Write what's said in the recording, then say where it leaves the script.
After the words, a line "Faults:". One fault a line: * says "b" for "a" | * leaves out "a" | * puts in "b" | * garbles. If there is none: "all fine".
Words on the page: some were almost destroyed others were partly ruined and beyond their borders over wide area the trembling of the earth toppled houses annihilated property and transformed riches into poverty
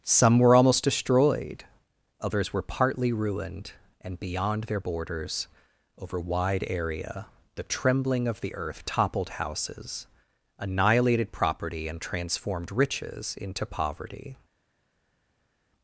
some were almost destroyed others were partly ruined and beyond their borders over wide area the trembling of the earth toppled houses annihilated property and transformed riches into poverty
Faults:
all fine